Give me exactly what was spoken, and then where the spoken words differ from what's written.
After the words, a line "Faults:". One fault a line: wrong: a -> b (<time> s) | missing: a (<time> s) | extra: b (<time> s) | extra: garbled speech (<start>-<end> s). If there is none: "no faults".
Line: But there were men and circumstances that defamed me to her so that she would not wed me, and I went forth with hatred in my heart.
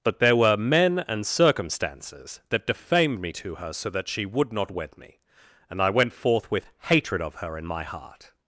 But there were men and circumstances that defamed me to her so that she would not wed me, and I went forth with hatred of her in my heart.
Faults:
extra: of her (7.2 s)